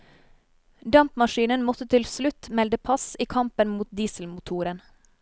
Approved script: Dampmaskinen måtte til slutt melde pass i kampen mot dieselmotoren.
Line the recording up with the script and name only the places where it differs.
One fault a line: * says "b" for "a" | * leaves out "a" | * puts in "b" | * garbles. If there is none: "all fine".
all fine